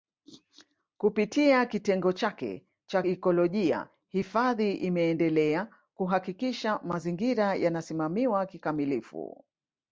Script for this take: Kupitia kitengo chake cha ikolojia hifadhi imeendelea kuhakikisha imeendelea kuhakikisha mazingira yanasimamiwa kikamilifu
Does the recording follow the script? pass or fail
fail